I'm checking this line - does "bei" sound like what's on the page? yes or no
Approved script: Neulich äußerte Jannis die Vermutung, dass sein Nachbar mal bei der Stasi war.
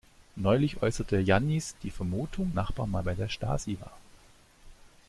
yes